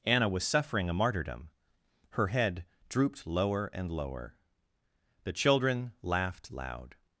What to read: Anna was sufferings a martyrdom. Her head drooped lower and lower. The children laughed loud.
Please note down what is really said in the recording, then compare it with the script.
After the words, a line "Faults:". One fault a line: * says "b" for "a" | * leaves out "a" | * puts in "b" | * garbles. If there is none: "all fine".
Anna was suffering a martyrdom. Her head drooped lower and lower. The children laughed loud.
Faults:
* says "suffering" for "sufferings"